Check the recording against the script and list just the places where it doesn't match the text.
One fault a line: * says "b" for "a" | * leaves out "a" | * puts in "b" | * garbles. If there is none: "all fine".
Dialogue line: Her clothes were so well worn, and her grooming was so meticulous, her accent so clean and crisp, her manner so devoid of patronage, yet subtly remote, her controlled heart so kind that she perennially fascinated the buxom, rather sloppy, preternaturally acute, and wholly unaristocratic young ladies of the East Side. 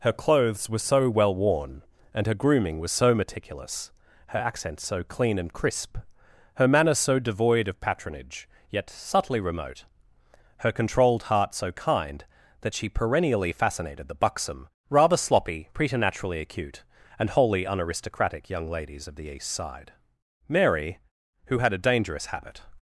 * puts in "Mary who had a dangerous habit"